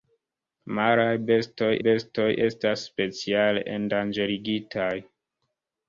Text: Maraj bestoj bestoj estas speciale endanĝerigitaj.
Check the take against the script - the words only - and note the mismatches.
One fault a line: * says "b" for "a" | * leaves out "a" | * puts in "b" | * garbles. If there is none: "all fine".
all fine